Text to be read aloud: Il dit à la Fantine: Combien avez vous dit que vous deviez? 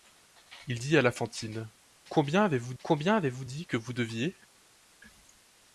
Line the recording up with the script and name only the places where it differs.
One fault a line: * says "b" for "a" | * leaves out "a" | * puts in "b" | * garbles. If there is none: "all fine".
* puts in "Combien avez vous"